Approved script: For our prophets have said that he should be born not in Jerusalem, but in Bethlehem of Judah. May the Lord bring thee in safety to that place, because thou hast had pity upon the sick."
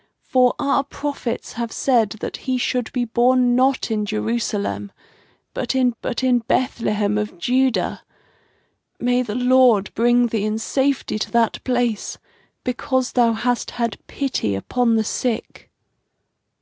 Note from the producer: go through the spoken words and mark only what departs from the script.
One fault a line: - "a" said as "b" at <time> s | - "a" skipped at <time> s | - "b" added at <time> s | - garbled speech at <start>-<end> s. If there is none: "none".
- "but in" added at 6.0 s